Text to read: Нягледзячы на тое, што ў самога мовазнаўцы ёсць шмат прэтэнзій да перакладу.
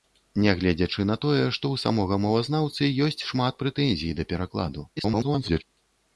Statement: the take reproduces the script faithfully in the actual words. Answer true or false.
false